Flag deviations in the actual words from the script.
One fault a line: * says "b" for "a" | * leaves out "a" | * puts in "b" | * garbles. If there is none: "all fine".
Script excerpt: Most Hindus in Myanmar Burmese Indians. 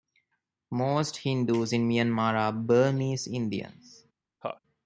* puts in "are"